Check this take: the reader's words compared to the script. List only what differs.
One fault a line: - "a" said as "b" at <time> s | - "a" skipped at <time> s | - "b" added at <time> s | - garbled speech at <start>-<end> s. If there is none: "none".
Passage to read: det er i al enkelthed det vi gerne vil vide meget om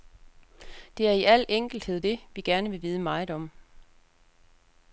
none